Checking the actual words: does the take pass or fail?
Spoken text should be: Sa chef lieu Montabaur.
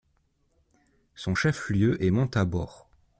fail